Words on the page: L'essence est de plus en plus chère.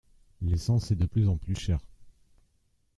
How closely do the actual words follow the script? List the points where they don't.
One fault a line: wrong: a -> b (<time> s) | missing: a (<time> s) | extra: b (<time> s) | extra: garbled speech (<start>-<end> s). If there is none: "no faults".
no faults